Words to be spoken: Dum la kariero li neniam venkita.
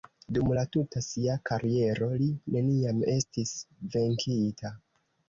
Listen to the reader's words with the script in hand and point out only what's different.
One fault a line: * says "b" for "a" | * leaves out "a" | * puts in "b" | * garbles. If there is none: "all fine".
* puts in "tuta sia"
* puts in "estis"